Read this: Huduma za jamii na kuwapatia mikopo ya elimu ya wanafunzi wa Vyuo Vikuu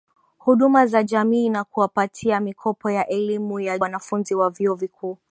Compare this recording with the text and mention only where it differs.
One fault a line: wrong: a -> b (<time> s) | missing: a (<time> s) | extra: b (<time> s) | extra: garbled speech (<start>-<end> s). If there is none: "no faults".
no faults